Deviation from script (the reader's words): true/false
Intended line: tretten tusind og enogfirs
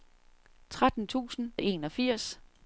false